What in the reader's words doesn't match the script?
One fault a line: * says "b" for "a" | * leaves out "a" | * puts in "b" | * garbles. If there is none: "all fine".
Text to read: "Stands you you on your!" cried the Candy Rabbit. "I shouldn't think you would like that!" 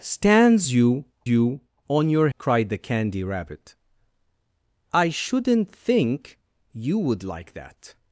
all fine